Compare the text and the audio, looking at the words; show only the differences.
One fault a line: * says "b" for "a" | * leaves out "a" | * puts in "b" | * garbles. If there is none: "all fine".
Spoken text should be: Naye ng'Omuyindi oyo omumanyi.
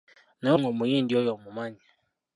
all fine